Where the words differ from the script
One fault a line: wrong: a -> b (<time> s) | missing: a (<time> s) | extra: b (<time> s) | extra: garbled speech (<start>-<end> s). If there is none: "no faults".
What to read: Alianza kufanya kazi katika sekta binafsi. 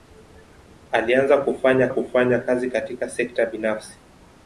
extra: kufanya (1.9 s)